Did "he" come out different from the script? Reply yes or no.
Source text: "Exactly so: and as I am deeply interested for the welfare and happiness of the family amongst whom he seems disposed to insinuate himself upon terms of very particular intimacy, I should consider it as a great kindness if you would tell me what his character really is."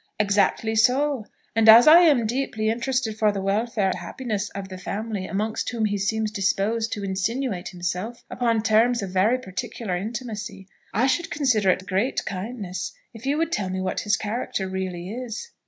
no